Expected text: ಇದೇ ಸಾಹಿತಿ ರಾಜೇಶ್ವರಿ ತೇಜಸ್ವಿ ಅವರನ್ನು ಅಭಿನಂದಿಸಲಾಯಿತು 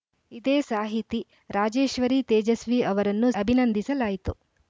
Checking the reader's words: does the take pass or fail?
pass